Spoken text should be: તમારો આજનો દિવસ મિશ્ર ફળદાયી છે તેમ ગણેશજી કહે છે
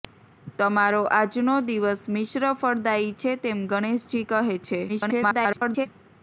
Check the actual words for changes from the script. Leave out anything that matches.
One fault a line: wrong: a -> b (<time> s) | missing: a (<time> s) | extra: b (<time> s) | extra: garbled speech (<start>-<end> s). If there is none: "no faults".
extra: garbled speech (4.9-5.9 s)